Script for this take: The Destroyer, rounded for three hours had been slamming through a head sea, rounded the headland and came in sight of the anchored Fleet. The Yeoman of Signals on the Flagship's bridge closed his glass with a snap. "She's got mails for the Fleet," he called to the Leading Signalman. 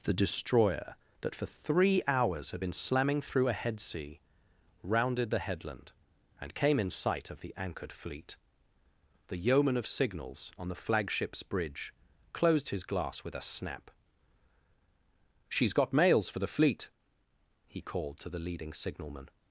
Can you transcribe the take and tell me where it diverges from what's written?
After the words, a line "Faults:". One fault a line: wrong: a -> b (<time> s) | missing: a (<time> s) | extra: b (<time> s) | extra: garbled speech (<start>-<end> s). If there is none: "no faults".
The Destroyer, that for three hours had been slamming through a head sea, rounded the headland and came in sight of the anchored Fleet. The Yeoman of Signals on the Flagship's bridge closed his glass with a snap. "She's got mails for the Fleet," he called to the Leading Signalman.
Faults:
wrong: rounded -> that (1.2 s)